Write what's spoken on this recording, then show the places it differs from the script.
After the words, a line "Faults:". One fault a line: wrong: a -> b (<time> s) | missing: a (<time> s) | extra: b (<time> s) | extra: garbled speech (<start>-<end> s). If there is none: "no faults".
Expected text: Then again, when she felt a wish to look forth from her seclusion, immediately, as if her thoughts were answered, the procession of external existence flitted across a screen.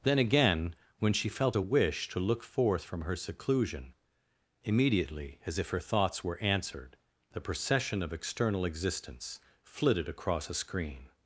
Then again, when she felt a wish to look forth from her seclusion, immediately, as if her thoughts were answered, the procession of external existence flitted across a screen.
Faults:
no faults